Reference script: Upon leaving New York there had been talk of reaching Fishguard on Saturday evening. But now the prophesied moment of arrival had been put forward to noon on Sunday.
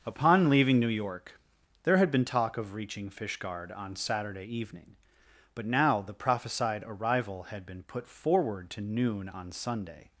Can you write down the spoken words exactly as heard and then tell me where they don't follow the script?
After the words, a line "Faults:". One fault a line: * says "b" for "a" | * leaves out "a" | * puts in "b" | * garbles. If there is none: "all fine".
Upon leaving New York there had been talk of reaching Fishguard on Saturday evening. But now the prophesied arrival had been put forward to noon on Sunday.
Faults:
* leaves out "moment of"